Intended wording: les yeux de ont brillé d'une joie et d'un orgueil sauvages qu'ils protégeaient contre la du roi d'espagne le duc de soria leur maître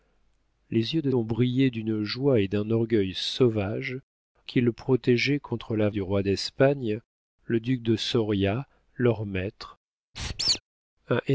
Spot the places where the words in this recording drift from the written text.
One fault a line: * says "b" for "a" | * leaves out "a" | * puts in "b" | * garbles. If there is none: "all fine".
all fine